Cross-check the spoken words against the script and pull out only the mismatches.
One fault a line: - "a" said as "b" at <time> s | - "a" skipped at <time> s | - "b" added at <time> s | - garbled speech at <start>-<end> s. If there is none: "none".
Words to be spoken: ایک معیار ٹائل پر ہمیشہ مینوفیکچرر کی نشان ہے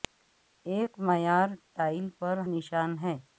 - "ہمیشہ مینوفیکچرر کی" skipped at 2.4 s